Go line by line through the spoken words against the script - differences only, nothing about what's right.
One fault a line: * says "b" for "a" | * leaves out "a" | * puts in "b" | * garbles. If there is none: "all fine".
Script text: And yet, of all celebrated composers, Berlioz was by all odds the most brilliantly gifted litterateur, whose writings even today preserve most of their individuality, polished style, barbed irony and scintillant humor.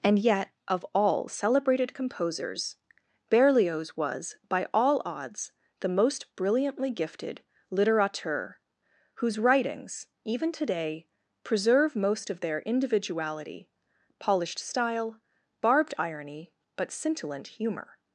* says "but" for "and"